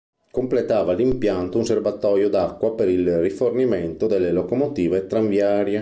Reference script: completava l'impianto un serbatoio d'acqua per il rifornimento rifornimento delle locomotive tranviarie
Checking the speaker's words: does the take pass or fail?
fail